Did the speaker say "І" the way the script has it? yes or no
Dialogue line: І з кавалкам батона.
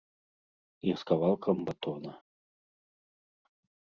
yes